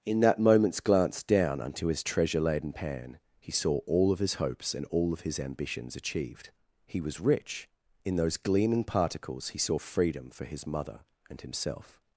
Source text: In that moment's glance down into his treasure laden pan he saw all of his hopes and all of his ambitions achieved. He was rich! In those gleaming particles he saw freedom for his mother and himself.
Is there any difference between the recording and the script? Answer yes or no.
yes